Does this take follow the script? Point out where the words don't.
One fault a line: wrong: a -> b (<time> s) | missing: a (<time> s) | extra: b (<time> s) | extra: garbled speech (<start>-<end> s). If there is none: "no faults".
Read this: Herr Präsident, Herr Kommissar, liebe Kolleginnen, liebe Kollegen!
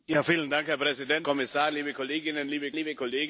missing: Herr (1.3 s)
extra: liebe (2.7 s)